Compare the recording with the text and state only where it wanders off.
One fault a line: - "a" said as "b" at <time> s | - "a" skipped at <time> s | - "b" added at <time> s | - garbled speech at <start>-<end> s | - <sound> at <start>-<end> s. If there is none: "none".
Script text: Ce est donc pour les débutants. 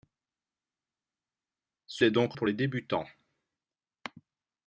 none